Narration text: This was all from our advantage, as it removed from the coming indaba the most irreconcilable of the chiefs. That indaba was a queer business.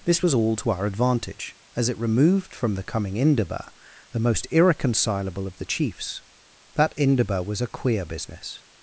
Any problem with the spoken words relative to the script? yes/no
yes